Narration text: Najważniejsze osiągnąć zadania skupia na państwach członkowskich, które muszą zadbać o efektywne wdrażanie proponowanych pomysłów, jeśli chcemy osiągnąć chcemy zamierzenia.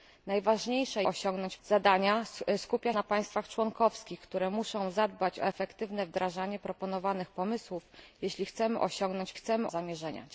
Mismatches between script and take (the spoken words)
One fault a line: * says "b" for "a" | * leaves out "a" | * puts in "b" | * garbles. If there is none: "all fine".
all fine